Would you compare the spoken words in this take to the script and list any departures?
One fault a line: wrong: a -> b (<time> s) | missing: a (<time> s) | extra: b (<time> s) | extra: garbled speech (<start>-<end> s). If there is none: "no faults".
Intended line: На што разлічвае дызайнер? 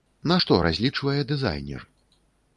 no faults